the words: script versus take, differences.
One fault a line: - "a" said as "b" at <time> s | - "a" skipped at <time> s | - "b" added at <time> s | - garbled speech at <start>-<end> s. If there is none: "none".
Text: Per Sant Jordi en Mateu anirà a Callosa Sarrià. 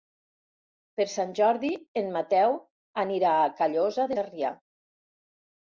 none